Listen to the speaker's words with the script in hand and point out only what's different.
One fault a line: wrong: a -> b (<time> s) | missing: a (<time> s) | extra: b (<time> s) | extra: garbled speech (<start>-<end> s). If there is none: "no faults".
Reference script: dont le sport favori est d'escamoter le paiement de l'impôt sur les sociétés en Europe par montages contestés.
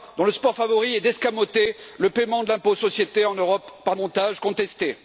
no faults